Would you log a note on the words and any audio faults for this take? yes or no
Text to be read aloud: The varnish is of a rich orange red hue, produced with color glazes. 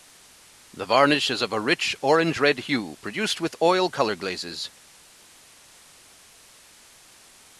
yes